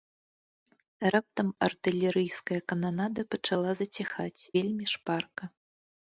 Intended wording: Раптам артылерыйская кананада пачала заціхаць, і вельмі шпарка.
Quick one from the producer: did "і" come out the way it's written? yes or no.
no